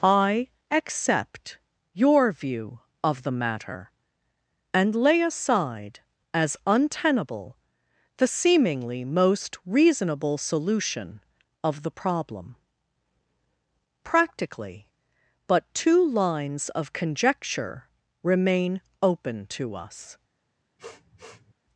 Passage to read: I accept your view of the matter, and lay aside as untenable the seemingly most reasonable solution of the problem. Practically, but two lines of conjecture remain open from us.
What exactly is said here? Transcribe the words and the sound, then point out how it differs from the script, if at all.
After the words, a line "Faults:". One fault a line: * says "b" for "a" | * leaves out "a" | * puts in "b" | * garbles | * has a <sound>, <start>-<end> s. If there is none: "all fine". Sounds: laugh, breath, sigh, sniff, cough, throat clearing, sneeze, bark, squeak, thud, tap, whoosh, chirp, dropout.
I accept your view of the matter, and lay aside as untenable the seemingly most reasonable solution of the problem. Practically, but two lines of conjecture remain open to us.
Faults:
* says "to" for "from"
* has a sniff, 20.8-21.5 s